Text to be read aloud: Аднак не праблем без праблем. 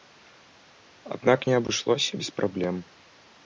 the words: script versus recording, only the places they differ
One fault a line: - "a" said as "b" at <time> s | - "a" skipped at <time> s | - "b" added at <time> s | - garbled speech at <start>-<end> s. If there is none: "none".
- "праблем" said as "абышлося" at 1.6 s